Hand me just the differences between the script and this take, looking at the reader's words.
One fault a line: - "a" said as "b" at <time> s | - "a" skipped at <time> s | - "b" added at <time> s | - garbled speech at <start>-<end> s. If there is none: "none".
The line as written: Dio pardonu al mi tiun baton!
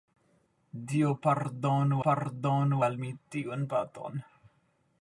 - "pardonu" added at 2.1 s